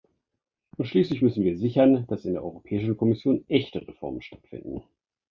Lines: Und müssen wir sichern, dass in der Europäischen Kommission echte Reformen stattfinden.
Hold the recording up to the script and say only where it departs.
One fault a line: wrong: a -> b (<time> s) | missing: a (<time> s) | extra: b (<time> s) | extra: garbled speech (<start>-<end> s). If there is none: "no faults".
extra: schließlich (0.8 s)